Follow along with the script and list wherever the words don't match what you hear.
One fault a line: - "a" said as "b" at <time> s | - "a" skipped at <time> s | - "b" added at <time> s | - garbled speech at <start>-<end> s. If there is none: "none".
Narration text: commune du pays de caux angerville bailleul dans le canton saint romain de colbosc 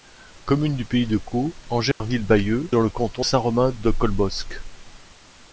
none